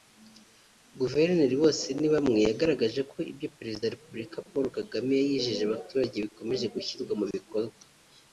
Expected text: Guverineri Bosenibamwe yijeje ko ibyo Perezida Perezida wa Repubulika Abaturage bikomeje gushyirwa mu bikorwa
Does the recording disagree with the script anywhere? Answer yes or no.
yes